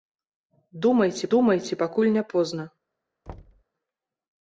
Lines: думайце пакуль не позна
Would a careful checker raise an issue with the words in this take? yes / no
yes